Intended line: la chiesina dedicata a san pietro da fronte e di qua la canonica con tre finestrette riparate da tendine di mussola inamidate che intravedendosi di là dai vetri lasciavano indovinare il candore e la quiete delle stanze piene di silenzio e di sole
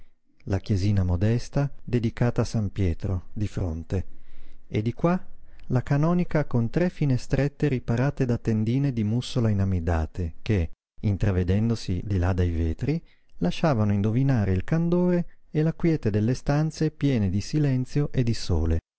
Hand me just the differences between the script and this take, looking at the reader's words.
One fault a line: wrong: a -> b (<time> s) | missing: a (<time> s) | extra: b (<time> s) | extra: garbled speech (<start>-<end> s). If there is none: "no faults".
extra: modesta (1.0 s)
wrong: da -> di (3.3 s)